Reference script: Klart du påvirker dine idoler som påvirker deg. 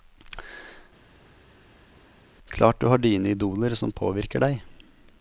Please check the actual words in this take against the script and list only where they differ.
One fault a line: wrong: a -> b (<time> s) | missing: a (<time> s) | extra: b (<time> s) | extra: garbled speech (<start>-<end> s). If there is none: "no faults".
wrong: påvirker -> har (2.9 s)